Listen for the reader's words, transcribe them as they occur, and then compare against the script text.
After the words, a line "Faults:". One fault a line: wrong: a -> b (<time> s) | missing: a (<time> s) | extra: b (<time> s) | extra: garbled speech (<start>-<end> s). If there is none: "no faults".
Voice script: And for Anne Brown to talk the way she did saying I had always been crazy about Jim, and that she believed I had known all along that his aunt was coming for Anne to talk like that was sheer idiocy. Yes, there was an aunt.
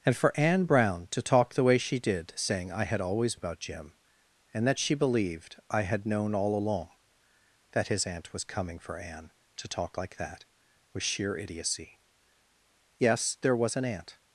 And for Anne Brown to talk the way she did saying I had always about Jim, and that she believed I had known all along that his aunt was coming for Anne to talk like that was sheer idiocy. Yes, there was an aunt.
Faults:
missing: been crazy (3.4 s)